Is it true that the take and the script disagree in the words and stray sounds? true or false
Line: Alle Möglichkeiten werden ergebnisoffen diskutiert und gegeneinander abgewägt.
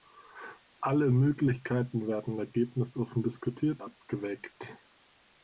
true